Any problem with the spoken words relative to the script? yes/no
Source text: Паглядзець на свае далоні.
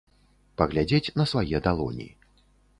no